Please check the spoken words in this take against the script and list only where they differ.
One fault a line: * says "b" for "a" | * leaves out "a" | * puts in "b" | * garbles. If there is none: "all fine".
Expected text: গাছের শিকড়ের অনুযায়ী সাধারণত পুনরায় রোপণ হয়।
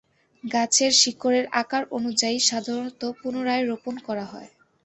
* puts in "আকার"
* puts in "করা"